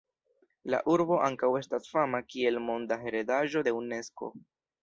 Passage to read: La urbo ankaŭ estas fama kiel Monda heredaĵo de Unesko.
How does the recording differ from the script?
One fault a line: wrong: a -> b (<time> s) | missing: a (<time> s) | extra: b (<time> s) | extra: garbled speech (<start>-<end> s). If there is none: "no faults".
no faults